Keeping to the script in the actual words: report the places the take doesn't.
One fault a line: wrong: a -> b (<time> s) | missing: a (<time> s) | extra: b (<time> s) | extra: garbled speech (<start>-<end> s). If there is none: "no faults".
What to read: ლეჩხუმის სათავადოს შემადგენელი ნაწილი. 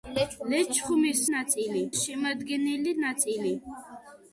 wrong: სათავადოს -> ნაწილი (1.4 s)